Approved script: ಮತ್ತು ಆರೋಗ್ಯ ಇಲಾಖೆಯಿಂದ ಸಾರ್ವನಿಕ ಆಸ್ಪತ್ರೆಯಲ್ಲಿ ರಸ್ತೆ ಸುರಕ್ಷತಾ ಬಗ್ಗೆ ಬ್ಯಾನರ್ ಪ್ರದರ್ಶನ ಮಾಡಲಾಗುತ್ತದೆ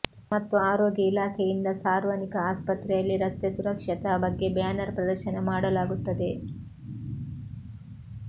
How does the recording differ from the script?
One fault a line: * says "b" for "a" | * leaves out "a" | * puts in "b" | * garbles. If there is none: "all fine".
all fine